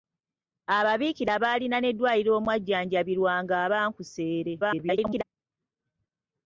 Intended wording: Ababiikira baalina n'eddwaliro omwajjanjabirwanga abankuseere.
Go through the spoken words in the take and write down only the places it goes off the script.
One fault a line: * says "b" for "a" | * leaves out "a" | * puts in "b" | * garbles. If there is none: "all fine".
* garbles